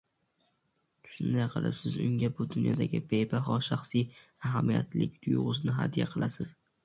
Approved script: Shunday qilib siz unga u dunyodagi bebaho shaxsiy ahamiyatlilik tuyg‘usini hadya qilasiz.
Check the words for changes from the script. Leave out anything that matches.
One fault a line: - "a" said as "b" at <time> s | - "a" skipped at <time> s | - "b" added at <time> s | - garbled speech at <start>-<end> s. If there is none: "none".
- "u" said as "bu" at 2.4 s